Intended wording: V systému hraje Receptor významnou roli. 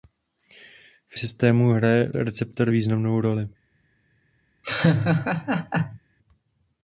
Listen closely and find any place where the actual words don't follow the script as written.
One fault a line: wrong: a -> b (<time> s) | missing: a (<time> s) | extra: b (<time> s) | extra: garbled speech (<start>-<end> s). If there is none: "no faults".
no faults